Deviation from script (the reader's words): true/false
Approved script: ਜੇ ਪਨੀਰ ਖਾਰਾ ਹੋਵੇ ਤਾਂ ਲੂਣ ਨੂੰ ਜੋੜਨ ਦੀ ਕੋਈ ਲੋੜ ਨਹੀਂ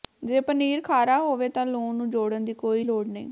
false